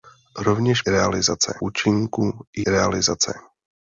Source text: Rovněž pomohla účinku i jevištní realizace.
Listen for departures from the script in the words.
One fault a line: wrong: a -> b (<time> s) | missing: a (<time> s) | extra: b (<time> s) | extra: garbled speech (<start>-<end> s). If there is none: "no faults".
wrong: pomohla -> realizace (0.9 s)
missing: jevištní (2.6 s)